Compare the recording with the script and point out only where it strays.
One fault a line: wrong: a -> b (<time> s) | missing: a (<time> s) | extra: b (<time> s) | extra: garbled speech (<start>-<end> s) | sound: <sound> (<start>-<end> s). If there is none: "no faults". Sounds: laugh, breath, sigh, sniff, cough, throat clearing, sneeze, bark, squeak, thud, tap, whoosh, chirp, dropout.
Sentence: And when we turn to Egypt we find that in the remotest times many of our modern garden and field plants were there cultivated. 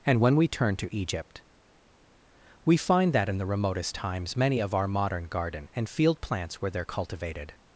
no faults